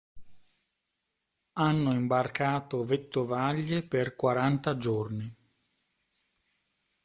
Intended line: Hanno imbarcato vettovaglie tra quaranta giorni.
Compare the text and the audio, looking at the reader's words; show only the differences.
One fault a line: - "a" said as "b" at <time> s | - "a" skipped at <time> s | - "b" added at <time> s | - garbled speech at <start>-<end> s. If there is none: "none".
- "tra" said as "per" at 3.8 s